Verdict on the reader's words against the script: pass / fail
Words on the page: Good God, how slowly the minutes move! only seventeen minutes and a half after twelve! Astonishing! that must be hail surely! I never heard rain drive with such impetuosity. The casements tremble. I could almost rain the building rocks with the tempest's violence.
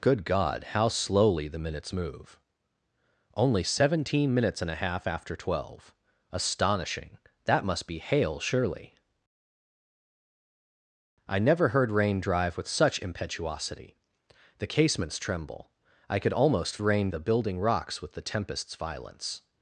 pass